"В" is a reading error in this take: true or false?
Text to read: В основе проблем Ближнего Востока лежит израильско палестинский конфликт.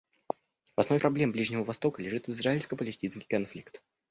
false